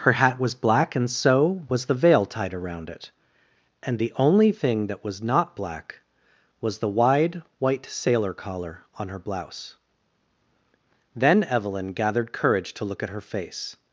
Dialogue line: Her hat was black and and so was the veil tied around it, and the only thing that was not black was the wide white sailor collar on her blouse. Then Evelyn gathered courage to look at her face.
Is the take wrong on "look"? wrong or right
right